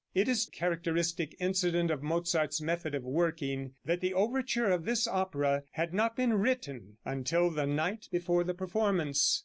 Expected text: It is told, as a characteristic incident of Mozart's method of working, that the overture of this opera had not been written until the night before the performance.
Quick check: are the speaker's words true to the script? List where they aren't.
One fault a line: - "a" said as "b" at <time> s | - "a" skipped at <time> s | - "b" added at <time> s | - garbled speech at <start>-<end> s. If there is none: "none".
- "told as a" skipped at 0.5 s